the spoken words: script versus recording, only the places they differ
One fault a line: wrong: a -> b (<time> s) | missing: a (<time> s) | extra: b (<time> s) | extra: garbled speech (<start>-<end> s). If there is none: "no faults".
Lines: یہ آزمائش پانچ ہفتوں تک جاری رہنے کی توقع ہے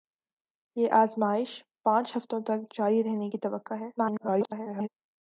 extra: garbled speech (4.0-4.9 s)